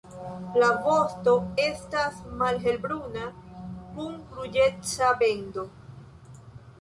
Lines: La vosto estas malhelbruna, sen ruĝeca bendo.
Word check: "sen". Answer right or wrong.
wrong